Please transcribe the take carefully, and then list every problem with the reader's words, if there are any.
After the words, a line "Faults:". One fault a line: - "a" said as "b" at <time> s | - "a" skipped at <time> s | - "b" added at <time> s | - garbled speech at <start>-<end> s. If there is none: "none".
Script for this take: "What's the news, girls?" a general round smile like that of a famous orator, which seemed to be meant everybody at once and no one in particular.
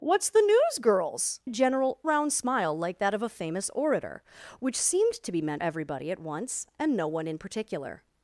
"What's the news, girls?" a general round smile like that of a famous orator, which seemed to be meant everybody at once and no one in particular.
Faults:
none